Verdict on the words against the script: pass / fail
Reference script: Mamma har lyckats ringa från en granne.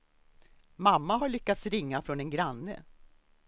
pass